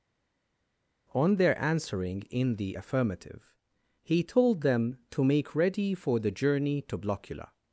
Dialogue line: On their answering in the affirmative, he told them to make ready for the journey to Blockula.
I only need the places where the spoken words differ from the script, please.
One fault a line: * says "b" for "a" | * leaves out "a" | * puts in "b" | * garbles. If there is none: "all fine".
all fine